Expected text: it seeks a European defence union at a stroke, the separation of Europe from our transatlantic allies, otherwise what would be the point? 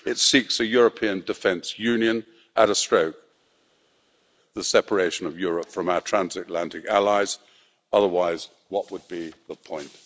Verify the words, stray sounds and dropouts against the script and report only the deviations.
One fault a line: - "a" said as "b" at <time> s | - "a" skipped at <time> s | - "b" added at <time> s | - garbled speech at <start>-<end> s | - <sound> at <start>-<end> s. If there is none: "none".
none